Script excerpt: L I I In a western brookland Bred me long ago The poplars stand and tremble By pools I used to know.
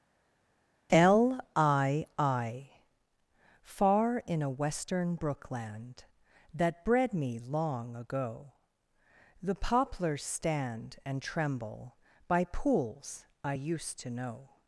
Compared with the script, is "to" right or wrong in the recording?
right